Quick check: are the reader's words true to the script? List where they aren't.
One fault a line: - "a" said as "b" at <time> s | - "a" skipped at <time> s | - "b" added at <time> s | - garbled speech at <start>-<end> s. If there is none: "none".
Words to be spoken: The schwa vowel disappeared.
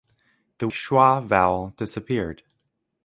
none